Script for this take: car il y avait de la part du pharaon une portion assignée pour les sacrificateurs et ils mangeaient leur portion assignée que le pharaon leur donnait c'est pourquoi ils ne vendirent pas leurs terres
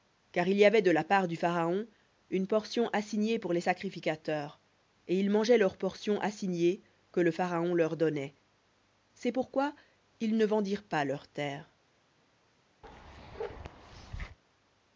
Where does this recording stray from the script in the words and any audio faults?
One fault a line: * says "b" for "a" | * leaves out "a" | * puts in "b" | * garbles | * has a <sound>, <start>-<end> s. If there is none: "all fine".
* has a bark, 12.8-14.4 s